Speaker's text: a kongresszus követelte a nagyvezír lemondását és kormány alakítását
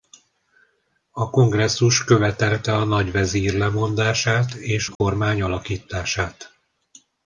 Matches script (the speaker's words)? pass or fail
pass